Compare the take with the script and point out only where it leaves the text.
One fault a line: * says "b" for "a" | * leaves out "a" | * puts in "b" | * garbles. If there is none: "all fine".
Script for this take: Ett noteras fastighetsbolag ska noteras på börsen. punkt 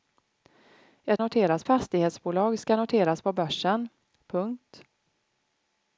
all fine